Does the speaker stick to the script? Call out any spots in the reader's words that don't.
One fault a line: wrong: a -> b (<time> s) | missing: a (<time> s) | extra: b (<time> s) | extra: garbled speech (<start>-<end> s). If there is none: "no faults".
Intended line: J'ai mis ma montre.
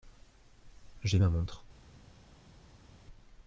missing: mis (1.2 s)